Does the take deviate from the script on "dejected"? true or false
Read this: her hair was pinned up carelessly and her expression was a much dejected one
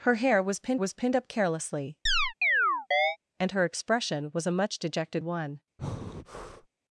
false